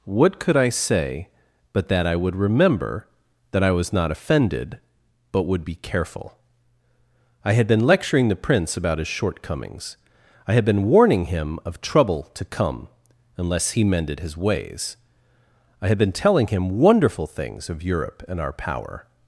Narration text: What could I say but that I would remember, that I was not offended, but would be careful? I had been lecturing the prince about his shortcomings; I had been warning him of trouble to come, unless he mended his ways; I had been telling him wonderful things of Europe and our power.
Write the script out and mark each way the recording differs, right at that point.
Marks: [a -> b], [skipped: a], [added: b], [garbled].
What could I say but that I would remember, that I was not offended, but would be careful? I had been lecturing the prince about his shortcomings; I had been warning him of trouble to come, unless he mended his ways; I had been telling him wonderful things of Europe and our power.